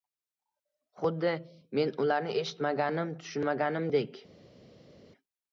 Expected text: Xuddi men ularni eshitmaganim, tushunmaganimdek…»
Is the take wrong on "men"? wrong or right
right